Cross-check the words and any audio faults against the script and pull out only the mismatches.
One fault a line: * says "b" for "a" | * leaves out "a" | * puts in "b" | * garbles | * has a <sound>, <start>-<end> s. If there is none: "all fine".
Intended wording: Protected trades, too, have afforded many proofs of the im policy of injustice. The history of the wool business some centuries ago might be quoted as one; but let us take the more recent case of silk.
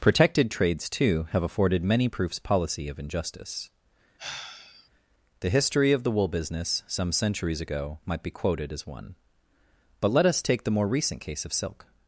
* leaves out "of the im"
* has a sigh, 4.2-4.9 s